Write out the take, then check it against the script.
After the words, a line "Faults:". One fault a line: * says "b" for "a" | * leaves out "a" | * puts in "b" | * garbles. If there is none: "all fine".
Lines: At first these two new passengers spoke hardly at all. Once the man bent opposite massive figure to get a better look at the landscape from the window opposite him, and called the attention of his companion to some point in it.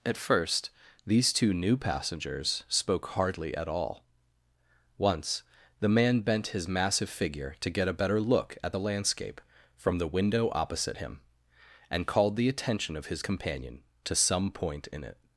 At first these two new passengers spoke hardly at all. Once the man bent his massive figure to get a better look at the landscape from the window opposite him, and called the attention of his companion to some point in it.
Faults:
* says "his" for "opposite"